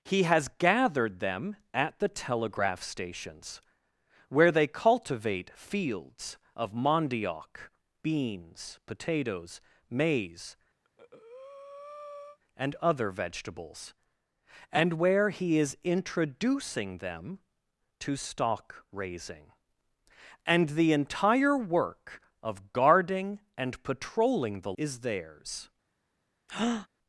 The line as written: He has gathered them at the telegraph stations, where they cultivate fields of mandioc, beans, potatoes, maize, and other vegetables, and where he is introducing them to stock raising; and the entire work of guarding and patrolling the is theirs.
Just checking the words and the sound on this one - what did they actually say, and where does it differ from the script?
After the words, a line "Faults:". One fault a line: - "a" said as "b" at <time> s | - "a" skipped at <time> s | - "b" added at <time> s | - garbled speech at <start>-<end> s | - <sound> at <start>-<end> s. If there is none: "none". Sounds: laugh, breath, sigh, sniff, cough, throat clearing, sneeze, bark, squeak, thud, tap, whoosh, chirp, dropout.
He has gathered them at the telegraph stations, where they cultivate fields of mandioc, beans, potatoes, maize, and other vegetables, and where he is introducing them to stock raising; and the entire work of guarding and patrolling the is theirs.
Faults:
- breath at 10.8-12.4 s
- breath at 26.5-26.9 s